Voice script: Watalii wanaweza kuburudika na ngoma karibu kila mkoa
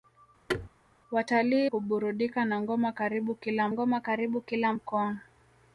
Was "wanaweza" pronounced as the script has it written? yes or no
no